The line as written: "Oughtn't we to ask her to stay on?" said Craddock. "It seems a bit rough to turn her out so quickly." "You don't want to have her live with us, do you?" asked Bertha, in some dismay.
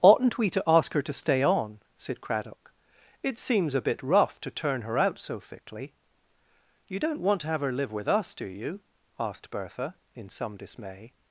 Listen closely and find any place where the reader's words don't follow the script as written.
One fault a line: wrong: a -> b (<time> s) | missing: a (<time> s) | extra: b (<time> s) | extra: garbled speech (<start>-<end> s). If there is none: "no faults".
wrong: quickly -> thickly (5.4 s)